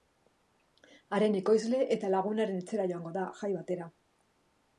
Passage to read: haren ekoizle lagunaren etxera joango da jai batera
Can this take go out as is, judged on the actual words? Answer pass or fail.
fail